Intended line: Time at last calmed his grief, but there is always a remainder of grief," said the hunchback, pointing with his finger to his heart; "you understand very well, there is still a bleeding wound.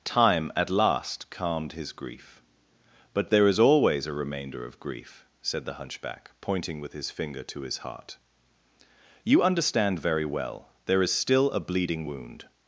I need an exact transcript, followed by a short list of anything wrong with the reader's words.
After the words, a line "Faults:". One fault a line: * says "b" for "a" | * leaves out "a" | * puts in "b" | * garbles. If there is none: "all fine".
Time at last calmed his grief, but there is always a remainder of grief," said the hunchback, pointing with his finger to his heart; "you understand very well, there is still a bleeding wound.
Faults:
all fine